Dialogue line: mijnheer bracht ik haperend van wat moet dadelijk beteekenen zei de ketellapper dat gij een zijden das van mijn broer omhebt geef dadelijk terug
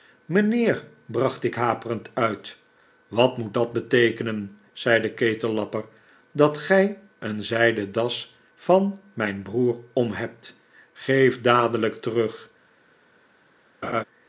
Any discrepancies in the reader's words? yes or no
yes